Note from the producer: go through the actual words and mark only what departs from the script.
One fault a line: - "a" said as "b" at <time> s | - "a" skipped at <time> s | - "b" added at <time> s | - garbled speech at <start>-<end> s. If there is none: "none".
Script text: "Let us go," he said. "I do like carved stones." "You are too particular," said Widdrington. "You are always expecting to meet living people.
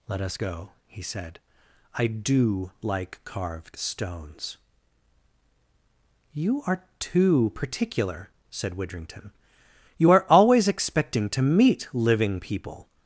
none